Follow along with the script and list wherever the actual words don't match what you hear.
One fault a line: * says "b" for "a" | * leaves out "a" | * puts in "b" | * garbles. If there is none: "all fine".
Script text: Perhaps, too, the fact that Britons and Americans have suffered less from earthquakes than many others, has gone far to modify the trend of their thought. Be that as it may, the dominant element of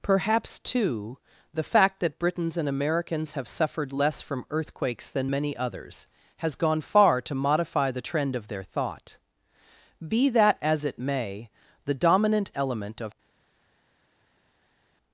all fine